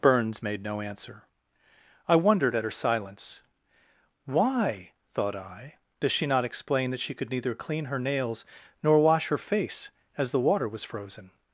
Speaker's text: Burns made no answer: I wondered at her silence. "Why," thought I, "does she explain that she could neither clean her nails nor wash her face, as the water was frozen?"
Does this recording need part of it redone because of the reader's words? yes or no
yes